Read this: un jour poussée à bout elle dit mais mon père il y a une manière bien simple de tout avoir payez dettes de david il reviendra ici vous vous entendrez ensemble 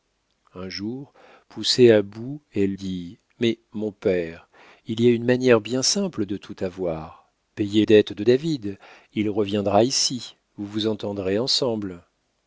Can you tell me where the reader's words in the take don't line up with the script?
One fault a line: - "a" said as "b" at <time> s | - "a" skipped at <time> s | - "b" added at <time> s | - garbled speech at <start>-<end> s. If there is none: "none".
none